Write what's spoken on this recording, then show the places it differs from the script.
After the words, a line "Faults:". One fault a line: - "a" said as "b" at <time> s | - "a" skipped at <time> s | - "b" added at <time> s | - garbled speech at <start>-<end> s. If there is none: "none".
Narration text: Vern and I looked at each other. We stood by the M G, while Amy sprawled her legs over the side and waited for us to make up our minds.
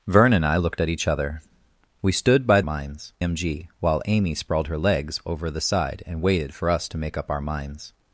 Vern and I looked at each other. We stood by minds M G, while Amy sprawled her legs over the side and waited for us to make up our minds.
Faults:
- "the" said as "minds" at 2.6 s